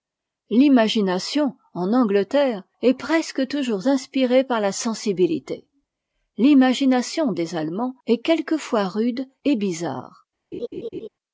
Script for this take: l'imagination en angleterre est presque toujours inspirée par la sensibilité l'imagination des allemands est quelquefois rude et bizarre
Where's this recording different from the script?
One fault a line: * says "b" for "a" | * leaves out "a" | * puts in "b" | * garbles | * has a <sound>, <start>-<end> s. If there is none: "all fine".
* has a laugh, 10.5-11.1 s